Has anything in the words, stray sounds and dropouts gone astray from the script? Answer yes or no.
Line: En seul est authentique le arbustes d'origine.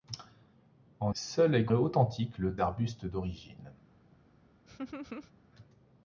yes